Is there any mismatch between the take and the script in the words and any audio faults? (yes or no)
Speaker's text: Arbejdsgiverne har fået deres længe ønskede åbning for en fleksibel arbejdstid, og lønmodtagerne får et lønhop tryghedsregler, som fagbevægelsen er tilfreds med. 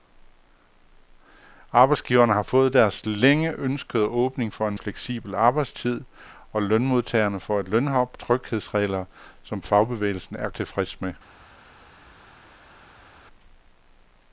no